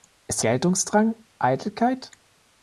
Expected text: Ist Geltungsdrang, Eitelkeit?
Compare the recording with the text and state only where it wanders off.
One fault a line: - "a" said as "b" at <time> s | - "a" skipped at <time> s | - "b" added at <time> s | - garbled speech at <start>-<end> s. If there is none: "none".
none